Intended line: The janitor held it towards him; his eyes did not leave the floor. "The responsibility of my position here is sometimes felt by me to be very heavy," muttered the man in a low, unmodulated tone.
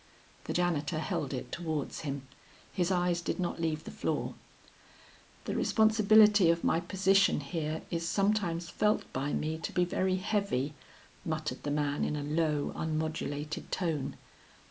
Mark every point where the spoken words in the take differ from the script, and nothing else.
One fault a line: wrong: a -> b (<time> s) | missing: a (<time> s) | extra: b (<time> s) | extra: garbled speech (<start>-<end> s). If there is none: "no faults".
no faults